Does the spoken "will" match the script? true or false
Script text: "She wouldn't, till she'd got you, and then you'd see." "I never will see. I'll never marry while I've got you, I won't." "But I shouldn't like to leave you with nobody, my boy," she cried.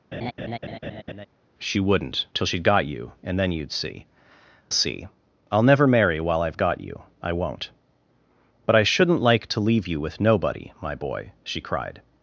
false